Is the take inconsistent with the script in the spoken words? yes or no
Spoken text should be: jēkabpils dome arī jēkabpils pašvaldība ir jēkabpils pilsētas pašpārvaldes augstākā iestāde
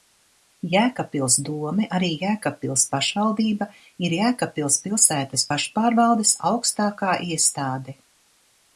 no